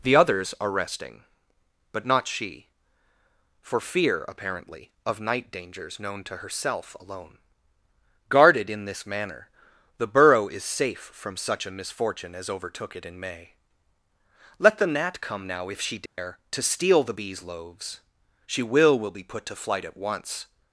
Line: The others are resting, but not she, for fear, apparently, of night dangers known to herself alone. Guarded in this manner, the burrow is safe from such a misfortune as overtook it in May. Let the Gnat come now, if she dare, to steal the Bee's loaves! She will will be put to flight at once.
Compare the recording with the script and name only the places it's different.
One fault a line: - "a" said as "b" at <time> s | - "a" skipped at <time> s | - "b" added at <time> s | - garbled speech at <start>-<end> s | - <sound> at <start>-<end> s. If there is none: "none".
- dropout at 16.1-16.2 s